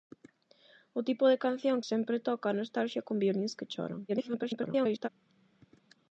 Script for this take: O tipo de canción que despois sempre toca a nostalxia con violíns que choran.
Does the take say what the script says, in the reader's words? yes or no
no